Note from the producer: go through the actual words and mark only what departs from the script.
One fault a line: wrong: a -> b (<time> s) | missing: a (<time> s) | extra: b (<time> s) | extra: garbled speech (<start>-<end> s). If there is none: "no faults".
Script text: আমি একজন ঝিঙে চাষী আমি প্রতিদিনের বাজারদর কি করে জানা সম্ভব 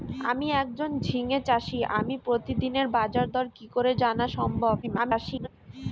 extra: garbled speech (4.8-5.5 s)